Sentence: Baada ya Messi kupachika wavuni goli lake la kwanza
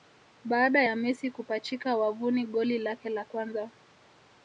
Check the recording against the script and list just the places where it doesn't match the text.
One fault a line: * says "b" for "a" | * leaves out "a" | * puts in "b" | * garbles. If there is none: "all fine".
all fine